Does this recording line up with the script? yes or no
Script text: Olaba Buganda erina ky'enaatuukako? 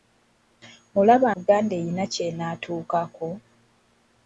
yes